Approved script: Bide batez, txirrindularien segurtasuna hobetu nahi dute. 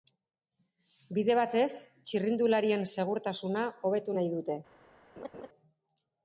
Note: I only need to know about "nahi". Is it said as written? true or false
true